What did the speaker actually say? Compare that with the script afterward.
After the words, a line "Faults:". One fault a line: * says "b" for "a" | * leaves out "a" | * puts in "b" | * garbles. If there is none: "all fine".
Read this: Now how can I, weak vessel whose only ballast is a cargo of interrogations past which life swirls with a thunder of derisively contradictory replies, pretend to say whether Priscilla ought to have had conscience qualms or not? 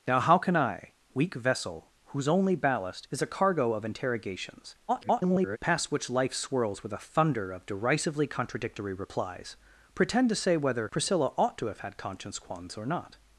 Now how can I, weak vessel whose only ballast is a cargo of interrogations [garbled] past which life swirls with a thunder of derisively contradictory replies, pretend to say whether Priscilla ought to have had conscience qualms or not?
Faults:
* garbles